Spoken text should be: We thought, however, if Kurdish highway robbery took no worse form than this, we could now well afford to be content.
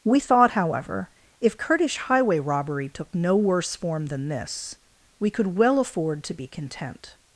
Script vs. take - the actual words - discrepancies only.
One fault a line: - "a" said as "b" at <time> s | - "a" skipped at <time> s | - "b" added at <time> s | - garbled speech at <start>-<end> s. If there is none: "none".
- "now" skipped at 5.6 s